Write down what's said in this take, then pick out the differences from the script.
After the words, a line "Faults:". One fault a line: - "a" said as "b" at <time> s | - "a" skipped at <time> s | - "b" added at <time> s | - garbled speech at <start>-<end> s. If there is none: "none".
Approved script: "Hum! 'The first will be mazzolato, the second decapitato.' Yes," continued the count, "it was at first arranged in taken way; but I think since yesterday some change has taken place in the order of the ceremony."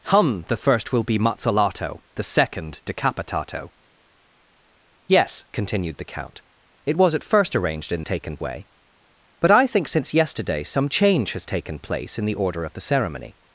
"Hum! 'The first will be mazzolato, the second decapitato.' Yes," continued the count, "it was at first arranged in taken way; but I think since yesterday some change has taken place in the order of the ceremony."
Faults:
none